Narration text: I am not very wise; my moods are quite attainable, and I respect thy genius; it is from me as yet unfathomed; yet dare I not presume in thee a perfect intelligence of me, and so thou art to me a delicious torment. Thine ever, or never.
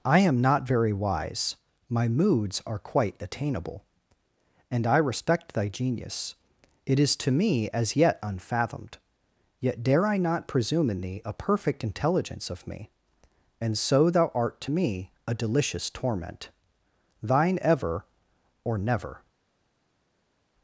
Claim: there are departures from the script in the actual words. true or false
true